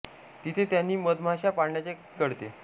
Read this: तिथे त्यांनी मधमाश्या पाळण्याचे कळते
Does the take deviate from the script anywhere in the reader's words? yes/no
no